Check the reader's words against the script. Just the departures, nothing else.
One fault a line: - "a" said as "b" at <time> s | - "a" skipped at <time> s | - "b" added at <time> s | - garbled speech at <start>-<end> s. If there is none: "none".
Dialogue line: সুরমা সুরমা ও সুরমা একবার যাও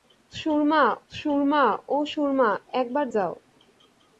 none